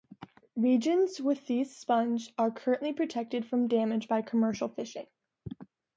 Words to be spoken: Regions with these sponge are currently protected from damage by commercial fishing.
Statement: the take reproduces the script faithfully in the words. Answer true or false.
true